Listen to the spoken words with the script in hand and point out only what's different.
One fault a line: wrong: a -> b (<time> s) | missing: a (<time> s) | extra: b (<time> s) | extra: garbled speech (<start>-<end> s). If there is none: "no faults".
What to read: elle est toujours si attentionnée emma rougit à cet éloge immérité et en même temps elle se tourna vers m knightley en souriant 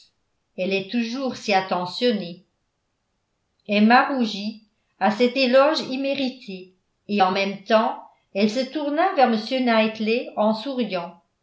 no faults